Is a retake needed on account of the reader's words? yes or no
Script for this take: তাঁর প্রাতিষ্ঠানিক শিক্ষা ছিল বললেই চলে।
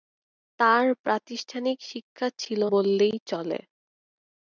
no